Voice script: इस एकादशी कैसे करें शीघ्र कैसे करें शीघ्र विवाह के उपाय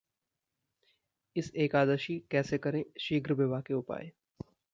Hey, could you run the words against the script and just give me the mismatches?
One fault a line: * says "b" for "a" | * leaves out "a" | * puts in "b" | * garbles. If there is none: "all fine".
* leaves out "कैसे करें शीघ्र"